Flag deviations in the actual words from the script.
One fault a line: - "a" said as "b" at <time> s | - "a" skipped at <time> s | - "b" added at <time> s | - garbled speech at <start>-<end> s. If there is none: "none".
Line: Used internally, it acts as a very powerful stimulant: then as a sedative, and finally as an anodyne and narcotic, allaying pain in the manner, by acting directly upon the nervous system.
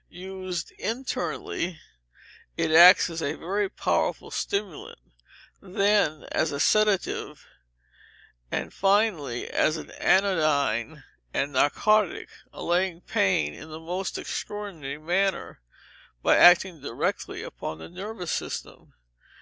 - "most extraordinary" added at 13.8 s